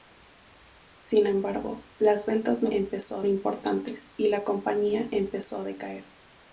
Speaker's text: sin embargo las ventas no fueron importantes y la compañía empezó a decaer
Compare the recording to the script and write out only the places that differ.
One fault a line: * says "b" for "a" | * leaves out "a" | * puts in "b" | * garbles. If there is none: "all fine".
* says "empezó" for "fueron"